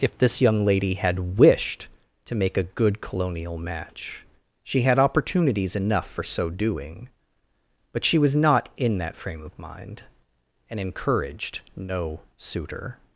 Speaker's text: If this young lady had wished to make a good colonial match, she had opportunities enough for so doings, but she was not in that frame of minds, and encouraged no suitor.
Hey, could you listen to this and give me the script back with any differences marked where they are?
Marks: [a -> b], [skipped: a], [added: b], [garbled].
If this young lady had wished to make a good colonial match, she had opportunities enough for so [doings, -> doing] but she was not in that frame of [minds, -> mind] and encouraged no suitor.